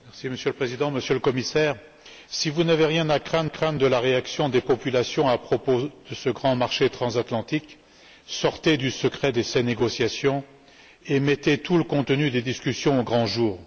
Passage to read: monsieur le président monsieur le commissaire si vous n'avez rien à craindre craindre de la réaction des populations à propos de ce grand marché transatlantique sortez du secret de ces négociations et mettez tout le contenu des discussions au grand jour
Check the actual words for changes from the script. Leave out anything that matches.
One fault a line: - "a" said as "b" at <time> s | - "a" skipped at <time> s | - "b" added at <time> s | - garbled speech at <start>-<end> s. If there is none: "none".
none